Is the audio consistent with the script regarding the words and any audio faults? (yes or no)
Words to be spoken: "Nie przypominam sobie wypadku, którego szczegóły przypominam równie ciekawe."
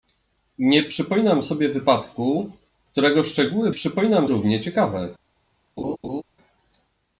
no